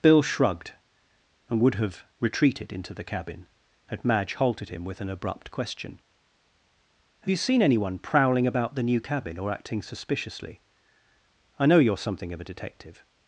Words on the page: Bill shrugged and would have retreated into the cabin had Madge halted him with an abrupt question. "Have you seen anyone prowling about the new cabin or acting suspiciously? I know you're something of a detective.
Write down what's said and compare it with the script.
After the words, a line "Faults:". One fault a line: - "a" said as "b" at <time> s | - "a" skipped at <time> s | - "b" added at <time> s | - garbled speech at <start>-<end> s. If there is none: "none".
Bill shrugged and would have retreated into the cabin had Madge halted him with an abrupt question. "Have you seen anyone prowling about the new cabin or acting suspiciously? I know you're something of a detective.
Faults:
none